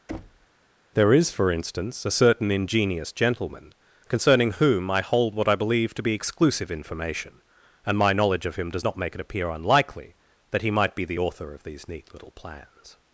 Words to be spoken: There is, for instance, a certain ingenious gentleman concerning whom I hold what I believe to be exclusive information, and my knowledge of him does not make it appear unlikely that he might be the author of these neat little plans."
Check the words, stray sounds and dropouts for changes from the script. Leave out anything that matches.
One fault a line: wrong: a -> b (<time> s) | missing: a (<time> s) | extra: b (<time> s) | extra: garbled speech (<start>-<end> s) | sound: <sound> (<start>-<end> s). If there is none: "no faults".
sound: thud (0.1-0.5 s)